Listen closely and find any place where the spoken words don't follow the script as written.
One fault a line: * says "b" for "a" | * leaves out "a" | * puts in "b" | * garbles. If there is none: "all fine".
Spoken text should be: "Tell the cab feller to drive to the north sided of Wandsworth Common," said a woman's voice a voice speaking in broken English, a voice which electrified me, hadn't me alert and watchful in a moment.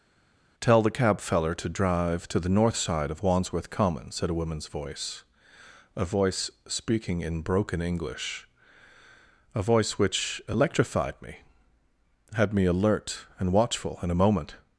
* says "side" for "sided"
* says "had" for "hadn't"